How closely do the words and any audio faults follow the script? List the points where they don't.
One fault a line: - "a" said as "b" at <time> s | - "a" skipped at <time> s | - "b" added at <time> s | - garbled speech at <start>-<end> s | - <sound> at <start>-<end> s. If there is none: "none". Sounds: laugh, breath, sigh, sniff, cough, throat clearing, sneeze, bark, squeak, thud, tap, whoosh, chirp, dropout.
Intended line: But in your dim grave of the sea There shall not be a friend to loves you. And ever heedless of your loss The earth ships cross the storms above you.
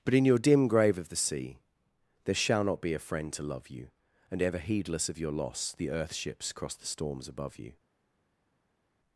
- "loves" said as "love" at 3.4 s